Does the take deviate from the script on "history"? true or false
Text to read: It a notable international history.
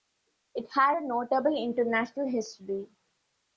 false